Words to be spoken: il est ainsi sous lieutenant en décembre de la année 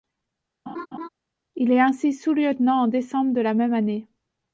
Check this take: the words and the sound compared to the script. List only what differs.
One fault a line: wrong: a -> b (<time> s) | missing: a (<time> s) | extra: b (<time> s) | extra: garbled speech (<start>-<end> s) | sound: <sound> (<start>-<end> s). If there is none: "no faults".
sound: laugh (0.7-1.1 s)
extra: même (3.5 s)